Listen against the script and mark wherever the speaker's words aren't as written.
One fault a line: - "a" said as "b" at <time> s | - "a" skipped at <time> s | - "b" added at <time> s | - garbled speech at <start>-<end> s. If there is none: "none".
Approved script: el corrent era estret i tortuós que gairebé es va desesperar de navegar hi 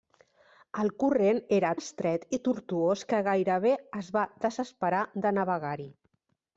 none